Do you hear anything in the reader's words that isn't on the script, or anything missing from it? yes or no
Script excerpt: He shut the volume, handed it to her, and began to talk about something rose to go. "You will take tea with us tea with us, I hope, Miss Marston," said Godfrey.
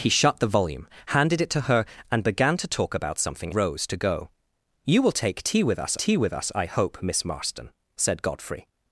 no